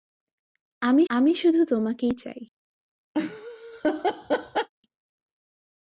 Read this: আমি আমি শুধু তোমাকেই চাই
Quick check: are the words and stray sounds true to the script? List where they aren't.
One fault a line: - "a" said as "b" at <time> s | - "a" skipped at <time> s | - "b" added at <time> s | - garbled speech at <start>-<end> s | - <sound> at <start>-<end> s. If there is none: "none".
- laugh at 3.1-4.7 s